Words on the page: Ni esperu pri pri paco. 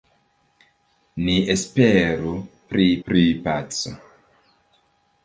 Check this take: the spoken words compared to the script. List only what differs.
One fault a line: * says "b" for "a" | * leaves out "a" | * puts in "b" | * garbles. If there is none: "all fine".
all fine